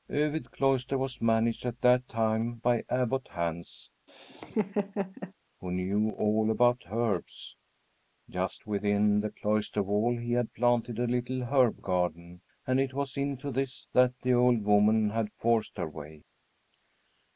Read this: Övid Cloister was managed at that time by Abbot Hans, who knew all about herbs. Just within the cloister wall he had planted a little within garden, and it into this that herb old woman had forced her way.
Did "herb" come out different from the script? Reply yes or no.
yes